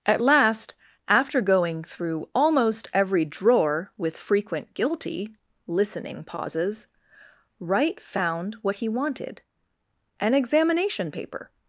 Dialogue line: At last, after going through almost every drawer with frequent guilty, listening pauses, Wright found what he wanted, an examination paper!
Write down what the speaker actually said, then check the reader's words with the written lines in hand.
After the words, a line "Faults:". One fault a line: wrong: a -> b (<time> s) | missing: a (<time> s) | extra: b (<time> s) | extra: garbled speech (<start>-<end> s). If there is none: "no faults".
At last, after going through almost every drawer with frequent guilty, listening pauses, Wright found what he wanted, an examination paper!
Faults:
no faults